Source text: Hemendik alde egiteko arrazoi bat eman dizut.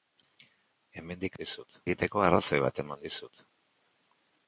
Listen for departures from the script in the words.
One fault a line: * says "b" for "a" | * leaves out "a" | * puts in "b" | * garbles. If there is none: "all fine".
* says "dizut" for "alde"